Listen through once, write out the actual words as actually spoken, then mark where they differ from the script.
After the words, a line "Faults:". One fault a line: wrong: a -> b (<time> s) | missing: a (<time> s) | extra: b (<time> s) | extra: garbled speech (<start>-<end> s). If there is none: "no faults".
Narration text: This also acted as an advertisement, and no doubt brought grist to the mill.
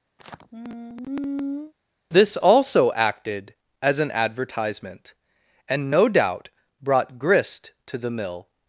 This also acted as an advertisement, and no doubt brought grist to the mill.
Faults:
no faults